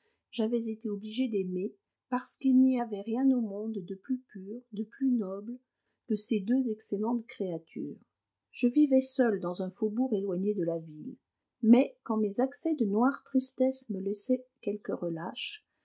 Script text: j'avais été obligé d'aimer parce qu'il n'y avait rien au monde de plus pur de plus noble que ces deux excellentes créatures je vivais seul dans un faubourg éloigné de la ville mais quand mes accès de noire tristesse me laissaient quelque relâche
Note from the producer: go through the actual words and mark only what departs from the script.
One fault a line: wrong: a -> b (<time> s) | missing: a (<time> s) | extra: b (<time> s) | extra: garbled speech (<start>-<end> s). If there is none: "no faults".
no faults